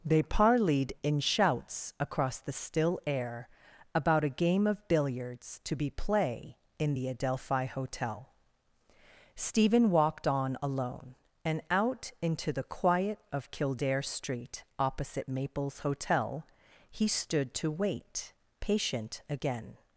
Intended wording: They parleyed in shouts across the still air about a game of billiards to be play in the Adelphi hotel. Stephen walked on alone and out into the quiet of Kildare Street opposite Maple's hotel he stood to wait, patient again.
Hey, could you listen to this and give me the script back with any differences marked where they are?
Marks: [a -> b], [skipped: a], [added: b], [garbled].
They parleyed in shouts across the still air about a game of billiards to be play in the Adelphi hotel. Stephen walked on alone and out into the quiet of Kildare Street opposite Maple's hotel he stood to wait, patient again.